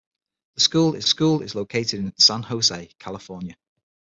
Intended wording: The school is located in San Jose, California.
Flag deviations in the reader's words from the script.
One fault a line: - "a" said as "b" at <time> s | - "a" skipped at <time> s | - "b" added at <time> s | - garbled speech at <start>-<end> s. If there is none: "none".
- "school is" added at 1.1 s